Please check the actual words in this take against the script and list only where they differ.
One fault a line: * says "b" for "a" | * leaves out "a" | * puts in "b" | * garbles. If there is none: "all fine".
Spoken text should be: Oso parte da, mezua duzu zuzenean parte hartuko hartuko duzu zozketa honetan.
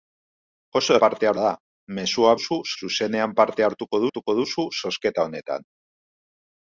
all fine